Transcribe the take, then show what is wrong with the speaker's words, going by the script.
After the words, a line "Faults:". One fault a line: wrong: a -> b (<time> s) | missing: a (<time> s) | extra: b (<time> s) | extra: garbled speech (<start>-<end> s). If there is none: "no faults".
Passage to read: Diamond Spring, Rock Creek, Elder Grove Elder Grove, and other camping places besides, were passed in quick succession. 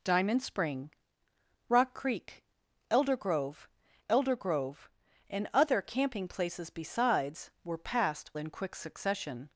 Diamond Spring, Rock Creek, Elder Grove Elder Grove, and other camping places besides, were passed in quick succession.
Faults:
no faults